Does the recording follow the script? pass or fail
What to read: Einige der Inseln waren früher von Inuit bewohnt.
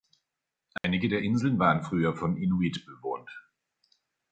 pass